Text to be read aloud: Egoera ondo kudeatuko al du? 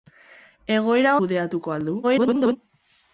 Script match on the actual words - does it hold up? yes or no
no